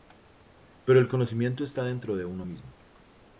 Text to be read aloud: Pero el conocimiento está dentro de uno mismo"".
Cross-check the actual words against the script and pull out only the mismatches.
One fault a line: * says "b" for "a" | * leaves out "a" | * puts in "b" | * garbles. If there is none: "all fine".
all fine